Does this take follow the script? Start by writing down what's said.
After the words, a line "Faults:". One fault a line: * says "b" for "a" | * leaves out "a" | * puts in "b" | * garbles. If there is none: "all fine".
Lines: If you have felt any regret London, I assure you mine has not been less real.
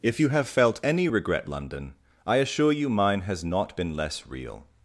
If you have felt any regret London, I assure you mine has not been less real.
Faults:
all fine